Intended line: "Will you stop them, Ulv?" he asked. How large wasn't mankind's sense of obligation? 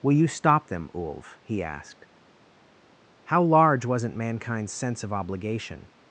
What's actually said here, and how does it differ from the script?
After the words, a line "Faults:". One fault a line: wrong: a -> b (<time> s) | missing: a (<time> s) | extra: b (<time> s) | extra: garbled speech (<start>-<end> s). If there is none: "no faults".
"Will you stop them, Ulv?" he asked. How large wasn't mankind's sense of obligation?
Faults:
no faults